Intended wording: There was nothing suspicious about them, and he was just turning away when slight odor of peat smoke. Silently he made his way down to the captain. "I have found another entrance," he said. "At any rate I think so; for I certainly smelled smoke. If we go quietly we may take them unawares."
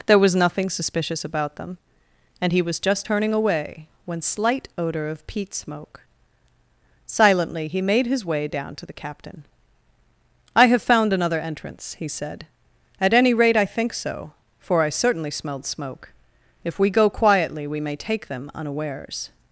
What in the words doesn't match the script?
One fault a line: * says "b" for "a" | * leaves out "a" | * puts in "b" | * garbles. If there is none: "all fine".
all fine